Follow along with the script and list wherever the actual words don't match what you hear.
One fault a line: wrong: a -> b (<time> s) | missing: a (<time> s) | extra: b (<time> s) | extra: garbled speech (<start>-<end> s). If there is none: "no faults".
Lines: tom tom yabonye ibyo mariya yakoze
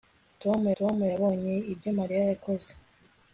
no faults